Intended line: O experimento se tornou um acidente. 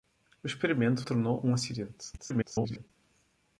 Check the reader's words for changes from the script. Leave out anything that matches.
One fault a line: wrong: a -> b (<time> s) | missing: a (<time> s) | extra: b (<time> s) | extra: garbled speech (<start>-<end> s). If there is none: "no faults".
missing: se (1.0 s)
extra: garbled speech (2.2-2.9 s)